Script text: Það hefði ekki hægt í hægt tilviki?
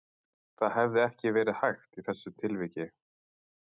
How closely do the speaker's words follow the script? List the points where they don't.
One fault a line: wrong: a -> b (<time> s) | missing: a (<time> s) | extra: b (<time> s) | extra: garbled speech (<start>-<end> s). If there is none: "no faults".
extra: verið (1.4 s)
wrong: hægt -> þessu (2.1 s)